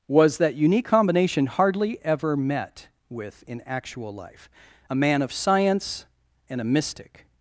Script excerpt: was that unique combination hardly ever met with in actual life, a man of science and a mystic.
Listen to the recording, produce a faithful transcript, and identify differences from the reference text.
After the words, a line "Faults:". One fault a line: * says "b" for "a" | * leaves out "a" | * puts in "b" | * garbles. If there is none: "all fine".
was that unique combination hardly ever met with in actual life, a man of science and a mystic.
Faults:
all fine